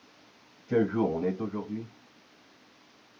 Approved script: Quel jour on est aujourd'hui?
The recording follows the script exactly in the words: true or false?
true